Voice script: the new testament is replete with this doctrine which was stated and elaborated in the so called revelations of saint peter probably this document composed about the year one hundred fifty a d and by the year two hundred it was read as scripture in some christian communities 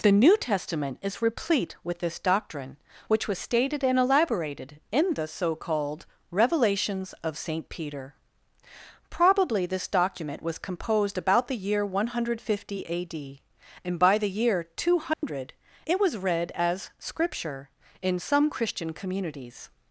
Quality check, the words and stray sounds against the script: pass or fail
fail